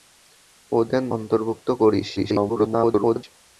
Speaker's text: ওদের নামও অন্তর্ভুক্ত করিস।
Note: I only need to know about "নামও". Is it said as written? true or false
false